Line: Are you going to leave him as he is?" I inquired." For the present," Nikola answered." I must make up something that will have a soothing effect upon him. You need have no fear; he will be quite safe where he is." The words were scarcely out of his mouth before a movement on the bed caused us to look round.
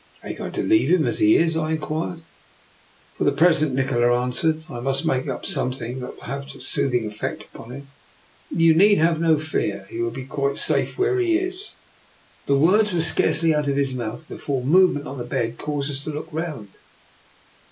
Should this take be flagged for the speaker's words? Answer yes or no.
no